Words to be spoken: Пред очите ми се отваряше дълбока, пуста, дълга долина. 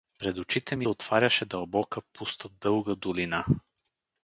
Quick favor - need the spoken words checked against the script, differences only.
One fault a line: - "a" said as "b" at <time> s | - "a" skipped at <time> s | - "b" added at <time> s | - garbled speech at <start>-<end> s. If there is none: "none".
- "се" skipped at 0.9 s